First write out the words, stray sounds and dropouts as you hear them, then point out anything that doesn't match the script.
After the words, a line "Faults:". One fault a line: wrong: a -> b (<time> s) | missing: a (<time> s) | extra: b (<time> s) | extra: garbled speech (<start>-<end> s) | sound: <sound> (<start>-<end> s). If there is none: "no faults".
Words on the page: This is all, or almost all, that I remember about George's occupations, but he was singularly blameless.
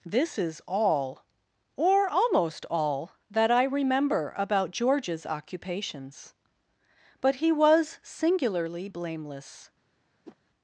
This is all, or almost all, that I remember about George's occupations, but he was singularly blameless.
Faults:
sound: whoosh (10.2-10.4 s)